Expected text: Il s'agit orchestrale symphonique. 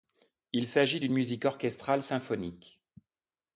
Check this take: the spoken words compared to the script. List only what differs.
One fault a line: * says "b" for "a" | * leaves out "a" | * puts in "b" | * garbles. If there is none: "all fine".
* puts in "d'une musique"